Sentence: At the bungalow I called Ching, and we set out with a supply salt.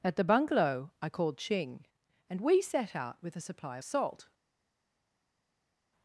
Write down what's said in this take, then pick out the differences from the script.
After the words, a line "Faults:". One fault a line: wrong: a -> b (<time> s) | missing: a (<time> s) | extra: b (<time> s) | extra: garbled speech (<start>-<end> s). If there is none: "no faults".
At the bungalow I called Ching, and we set out with a supply salt.
Faults:
no faults